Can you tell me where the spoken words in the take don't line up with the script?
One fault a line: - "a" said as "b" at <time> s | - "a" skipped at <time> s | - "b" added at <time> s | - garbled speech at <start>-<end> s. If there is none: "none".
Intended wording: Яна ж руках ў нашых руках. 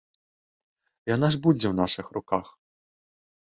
- "руках" said as "будзе" at 1.4 s